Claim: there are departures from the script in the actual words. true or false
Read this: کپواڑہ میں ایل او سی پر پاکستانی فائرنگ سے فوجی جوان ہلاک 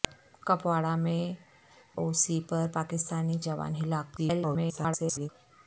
true